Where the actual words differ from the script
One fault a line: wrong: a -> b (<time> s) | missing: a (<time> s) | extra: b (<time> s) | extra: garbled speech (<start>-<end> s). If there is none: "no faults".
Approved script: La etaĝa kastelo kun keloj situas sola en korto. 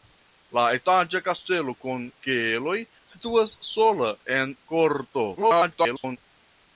extra: garbled speech (5.4-6.2 s)